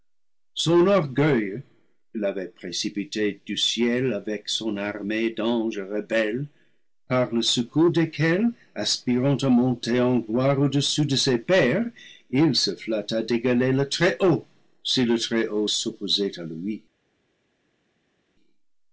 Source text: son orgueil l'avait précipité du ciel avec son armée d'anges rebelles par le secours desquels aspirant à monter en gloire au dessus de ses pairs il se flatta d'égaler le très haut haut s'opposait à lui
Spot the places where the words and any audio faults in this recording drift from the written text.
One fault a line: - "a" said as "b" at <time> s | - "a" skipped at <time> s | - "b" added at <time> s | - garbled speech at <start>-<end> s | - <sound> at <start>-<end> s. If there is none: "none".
- "si le très" added at 14.8 s